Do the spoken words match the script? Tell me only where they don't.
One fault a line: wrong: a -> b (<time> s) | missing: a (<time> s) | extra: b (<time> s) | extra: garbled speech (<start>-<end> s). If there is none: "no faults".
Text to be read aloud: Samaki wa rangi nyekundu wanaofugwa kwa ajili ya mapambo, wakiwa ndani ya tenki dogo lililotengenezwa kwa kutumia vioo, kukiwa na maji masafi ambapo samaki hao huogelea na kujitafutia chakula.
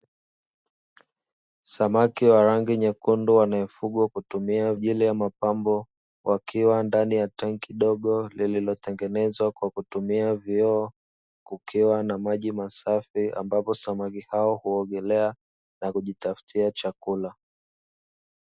wrong: kwa -> kutumia (4.1 s)